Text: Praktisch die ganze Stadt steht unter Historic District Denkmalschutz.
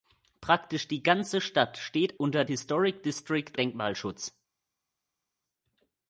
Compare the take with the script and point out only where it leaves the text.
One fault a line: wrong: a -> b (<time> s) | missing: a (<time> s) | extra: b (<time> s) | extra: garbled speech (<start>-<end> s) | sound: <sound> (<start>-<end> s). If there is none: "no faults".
no faults